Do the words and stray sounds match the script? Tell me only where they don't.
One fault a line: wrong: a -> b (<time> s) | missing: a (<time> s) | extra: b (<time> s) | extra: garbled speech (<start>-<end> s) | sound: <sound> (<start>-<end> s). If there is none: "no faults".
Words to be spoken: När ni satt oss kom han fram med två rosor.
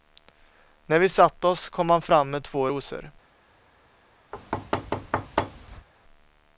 wrong: ni -> vi (1.0 s)
sound: thud (4.3-5.9 s)